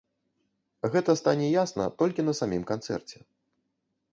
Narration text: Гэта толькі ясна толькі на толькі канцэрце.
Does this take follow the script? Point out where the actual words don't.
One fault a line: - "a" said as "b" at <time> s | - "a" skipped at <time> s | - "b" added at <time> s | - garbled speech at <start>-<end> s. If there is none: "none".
- "толькі" said as "стане" at 1.2 s
- "толькі" said as "самім" at 2.4 s